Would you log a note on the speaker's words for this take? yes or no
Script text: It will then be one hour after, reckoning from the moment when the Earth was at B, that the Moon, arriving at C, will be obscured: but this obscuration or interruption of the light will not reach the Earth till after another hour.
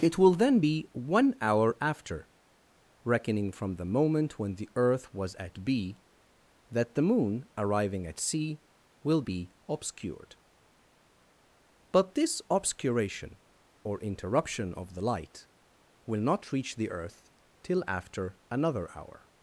no